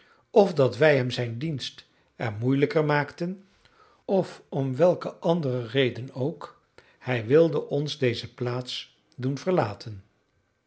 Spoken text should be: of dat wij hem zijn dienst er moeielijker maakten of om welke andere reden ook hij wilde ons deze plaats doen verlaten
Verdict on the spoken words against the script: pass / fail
pass